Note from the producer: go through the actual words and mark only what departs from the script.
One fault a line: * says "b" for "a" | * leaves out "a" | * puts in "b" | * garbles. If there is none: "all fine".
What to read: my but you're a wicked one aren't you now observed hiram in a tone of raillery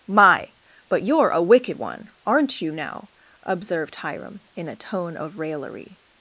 all fine